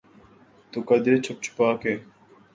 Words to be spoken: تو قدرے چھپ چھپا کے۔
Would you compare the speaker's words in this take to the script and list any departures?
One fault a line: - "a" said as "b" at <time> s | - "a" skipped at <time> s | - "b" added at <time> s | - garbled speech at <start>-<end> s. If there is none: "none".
none